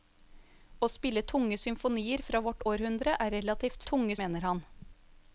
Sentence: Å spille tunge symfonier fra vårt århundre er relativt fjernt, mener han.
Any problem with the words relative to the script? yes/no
yes